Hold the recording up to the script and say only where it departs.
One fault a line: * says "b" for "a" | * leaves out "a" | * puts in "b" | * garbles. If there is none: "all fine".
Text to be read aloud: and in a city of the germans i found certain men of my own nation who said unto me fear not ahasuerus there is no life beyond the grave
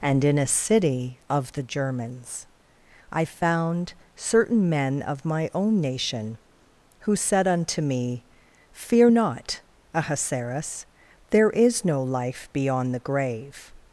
all fine